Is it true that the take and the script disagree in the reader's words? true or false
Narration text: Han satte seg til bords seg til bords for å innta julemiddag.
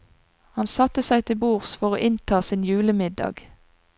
true